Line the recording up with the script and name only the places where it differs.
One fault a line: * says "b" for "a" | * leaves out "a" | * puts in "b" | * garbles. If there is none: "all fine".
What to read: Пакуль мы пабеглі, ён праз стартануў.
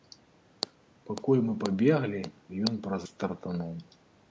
all fine